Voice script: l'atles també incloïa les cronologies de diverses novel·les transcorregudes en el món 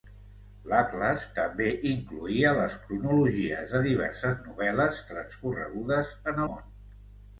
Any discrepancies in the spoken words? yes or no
yes